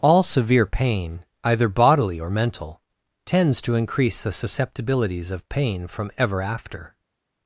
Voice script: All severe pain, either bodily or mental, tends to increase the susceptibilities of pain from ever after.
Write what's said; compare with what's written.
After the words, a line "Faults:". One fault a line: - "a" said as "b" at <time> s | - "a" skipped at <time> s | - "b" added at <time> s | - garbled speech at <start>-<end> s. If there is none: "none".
All severe pain, either bodily or mental, tends to increase the susceptibilities of pain from ever after.
Faults:
none